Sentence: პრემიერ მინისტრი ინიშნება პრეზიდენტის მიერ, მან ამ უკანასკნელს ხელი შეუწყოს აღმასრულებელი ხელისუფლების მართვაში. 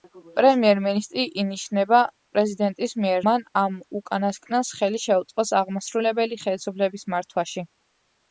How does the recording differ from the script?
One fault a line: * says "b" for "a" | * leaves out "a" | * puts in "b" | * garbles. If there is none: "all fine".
all fine